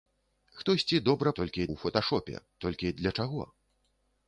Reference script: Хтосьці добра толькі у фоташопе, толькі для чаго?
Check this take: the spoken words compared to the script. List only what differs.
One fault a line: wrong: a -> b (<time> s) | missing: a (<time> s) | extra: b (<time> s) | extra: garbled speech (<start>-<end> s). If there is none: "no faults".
no faults